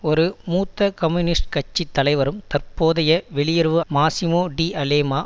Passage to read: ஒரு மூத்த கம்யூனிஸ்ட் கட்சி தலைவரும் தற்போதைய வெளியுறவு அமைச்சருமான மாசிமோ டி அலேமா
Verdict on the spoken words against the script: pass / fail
fail